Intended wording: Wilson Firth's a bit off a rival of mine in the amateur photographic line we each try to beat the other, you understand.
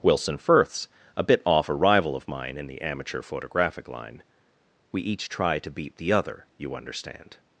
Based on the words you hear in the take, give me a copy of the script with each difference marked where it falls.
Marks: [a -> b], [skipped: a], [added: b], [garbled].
Wilson Firth's a bit off a rival of mine in the amateur photographic line we each try to beat the other, you understand.